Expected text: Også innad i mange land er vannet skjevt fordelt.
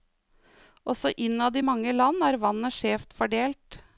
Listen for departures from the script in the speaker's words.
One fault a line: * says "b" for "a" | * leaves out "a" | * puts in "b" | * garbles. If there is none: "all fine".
all fine